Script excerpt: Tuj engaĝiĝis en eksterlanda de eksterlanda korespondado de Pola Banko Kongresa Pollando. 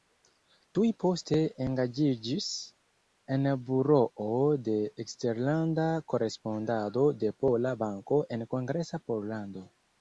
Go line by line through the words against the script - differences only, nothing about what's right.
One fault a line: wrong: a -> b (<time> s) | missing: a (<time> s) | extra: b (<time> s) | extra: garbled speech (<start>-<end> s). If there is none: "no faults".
extra: poste (1.0 s)
wrong: eksterlanda -> buroo (3.7 s)
extra: en (8.4 s)